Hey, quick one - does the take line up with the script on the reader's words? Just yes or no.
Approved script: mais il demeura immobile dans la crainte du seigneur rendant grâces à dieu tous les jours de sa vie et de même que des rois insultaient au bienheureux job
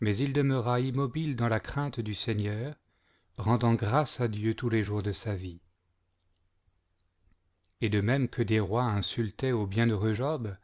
yes